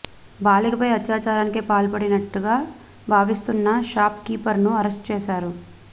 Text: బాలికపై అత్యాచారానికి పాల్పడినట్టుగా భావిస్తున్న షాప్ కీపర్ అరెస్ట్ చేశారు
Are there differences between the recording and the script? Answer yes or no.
yes